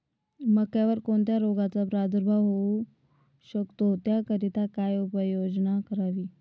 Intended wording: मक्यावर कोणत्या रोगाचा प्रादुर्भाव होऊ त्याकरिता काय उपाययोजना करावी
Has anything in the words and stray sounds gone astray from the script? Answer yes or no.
yes